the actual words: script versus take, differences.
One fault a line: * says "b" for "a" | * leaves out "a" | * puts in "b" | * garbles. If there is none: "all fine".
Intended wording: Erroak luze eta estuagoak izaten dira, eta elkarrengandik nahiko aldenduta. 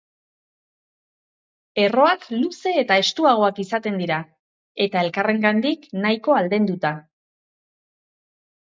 all fine